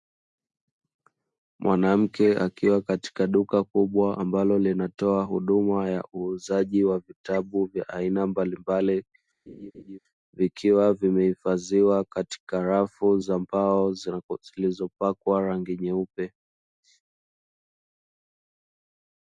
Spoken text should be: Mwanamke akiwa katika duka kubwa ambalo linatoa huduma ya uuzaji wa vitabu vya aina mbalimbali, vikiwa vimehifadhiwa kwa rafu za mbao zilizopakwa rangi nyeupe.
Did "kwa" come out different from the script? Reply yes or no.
yes